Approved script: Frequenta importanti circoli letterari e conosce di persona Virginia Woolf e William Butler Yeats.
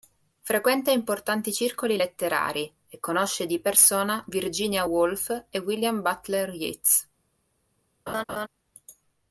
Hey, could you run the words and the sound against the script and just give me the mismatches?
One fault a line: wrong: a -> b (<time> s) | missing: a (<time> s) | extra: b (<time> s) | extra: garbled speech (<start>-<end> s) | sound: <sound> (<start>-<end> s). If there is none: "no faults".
sound: laugh (8.1-8.5 s)